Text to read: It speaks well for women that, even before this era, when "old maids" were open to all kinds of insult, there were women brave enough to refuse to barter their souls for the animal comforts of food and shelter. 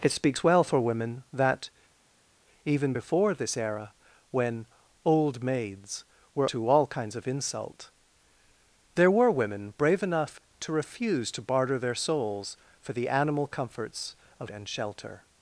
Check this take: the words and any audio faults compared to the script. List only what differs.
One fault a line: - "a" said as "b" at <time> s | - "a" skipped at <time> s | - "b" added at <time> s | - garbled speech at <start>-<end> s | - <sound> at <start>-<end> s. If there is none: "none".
- "open" skipped at 6.5 s
- "food" skipped at 14.5 s